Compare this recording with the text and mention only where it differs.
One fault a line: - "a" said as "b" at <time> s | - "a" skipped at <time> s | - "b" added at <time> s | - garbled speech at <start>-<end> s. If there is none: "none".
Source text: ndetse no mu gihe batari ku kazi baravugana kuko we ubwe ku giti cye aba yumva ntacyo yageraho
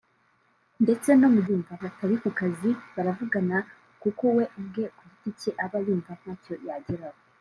- "gihe" said as "yumva" at 1.5 s